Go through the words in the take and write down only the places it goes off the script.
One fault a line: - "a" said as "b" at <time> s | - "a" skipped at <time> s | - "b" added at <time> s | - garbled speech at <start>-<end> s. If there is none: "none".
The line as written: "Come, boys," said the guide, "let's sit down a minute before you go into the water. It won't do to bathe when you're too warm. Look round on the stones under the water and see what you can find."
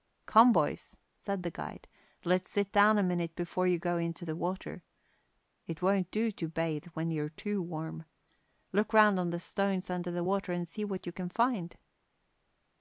none